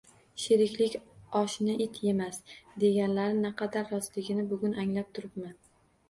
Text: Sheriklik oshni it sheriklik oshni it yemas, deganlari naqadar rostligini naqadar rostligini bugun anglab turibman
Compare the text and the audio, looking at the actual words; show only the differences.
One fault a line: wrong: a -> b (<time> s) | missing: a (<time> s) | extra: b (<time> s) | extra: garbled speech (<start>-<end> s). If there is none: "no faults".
missing: sheriklik oshni it (2.0 s)
missing: naqadar rostligini (4.4 s)